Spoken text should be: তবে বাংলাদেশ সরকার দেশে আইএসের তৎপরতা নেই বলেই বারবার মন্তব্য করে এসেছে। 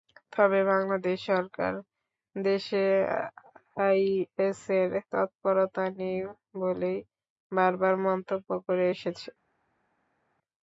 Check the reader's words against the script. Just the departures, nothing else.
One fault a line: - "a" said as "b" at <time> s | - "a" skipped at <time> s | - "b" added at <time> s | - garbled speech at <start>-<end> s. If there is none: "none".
none